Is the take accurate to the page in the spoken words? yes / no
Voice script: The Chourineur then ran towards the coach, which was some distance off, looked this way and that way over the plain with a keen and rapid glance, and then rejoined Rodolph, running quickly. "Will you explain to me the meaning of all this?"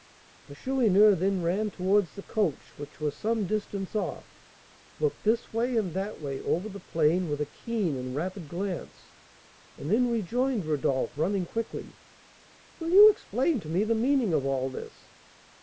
yes